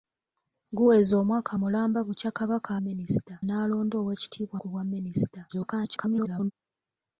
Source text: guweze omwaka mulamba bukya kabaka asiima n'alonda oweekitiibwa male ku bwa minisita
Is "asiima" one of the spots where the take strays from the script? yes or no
yes